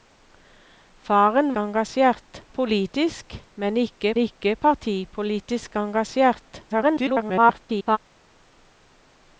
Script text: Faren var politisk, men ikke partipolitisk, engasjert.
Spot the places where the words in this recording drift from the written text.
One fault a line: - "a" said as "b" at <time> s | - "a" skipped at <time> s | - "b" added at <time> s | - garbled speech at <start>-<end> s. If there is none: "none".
- "var" said as "engasjert" at 1.6 s
- "ikke" added at 4.2 s
- garbled speech at 6.7-8.0 s